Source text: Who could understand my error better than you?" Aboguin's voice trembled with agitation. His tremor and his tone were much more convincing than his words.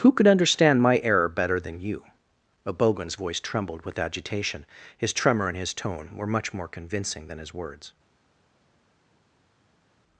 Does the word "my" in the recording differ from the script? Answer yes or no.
no